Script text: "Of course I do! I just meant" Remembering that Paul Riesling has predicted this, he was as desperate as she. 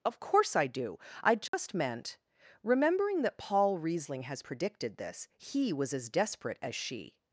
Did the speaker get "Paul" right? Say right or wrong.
right